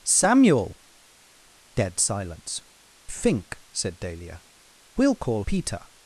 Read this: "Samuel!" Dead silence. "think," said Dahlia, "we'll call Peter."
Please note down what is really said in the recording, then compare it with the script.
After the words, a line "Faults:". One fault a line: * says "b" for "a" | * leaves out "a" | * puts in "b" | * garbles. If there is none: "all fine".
"Samuel!" Dead silence. "think," said Dahlia, "we'll call Peter."
Faults:
all fine